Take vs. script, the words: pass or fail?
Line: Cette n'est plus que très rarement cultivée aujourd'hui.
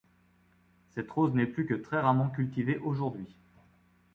fail